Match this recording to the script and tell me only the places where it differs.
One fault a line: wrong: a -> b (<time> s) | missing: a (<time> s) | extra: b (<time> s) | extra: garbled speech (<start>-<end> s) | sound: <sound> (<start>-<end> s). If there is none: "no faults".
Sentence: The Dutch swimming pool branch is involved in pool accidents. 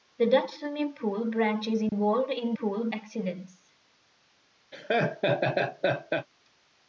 sound: dropout (1.9-1.9 s)
sound: laugh (4.7-6.3 s)